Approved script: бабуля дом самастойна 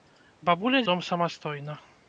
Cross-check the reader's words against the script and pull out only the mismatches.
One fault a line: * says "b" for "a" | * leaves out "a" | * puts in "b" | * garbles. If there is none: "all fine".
all fine